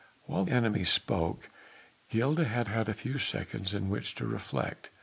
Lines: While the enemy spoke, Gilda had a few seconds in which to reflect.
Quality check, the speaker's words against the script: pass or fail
fail